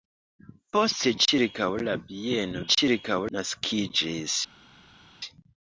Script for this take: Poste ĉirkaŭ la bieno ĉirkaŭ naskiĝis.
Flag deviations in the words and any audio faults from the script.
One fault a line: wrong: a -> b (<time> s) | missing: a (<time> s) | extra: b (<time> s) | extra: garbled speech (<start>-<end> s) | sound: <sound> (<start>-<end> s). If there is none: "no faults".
no faults